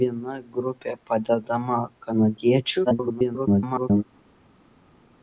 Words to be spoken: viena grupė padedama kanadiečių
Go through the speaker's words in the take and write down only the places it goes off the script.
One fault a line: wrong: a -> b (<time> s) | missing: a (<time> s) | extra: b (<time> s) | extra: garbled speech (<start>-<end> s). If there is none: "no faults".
extra: garbled speech (2.8-4.0 s)